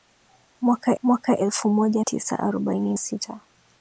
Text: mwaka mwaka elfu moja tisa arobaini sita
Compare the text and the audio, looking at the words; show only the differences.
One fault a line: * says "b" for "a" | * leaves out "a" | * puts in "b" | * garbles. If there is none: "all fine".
all fine